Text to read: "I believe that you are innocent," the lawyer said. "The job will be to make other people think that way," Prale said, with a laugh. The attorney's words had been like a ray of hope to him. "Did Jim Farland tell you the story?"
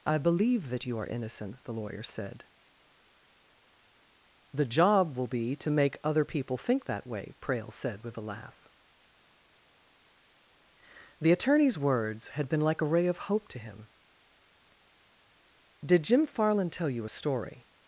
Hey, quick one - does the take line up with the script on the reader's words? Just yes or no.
no